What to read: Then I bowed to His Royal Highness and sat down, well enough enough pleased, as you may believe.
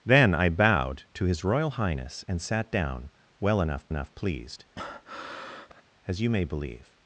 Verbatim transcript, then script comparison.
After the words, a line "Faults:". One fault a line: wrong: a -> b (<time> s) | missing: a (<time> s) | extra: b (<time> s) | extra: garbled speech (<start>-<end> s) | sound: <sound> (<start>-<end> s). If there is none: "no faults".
Then I bowed to His Royal Highness and sat down, well enough enough pleased, as you may believe.
Faults:
sound: breath (4.8-5.8 s)